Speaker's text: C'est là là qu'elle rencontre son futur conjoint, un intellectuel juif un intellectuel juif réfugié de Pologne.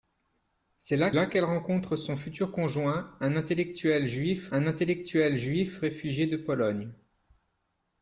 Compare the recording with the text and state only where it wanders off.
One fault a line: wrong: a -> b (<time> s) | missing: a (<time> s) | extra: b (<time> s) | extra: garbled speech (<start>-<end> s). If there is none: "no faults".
no faults